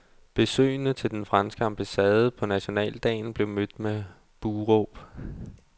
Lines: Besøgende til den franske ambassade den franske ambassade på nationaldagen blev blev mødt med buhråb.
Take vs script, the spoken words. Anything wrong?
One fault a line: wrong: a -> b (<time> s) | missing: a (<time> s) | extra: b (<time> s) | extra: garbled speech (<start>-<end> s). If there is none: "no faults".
missing: den franske ambassade (2.3 s)
missing: blev (3.5 s)